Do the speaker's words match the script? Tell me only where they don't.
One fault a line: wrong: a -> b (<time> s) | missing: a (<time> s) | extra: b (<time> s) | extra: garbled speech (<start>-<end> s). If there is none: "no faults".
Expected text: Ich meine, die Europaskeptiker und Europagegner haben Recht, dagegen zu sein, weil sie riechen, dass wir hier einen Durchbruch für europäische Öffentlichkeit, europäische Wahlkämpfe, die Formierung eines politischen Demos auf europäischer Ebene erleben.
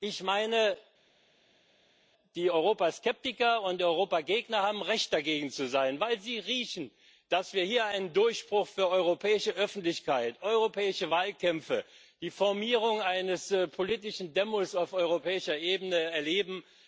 no faults